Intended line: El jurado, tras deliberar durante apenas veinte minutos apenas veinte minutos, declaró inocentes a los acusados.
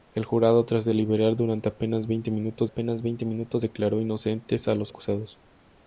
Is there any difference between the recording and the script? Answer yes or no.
no